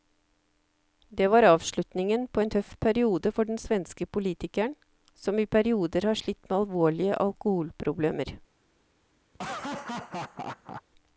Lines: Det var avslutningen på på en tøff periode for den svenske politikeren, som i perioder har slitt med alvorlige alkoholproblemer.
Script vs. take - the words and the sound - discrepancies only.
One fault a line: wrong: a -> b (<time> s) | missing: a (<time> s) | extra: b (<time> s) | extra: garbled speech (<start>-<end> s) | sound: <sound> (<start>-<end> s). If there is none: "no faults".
missing: på (2.4 s)
sound: laugh (9.3-10.8 s)